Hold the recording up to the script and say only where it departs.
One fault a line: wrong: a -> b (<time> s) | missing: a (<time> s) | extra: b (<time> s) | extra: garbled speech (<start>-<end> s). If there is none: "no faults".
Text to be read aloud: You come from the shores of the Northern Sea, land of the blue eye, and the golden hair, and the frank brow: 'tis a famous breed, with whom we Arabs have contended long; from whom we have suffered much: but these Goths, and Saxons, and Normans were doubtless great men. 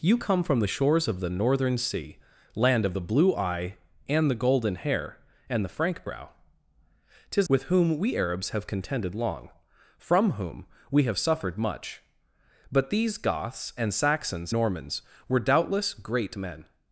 missing: a famous breed (7.5 s)
missing: and (14.5 s)